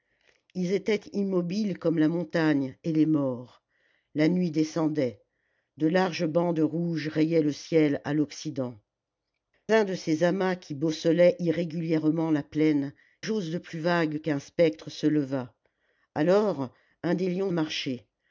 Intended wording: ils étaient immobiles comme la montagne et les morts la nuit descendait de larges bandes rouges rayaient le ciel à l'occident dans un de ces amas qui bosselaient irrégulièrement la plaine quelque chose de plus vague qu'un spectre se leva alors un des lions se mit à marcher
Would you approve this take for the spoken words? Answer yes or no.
no